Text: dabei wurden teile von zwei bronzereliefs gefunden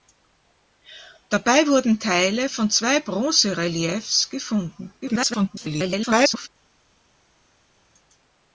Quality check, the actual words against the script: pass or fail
fail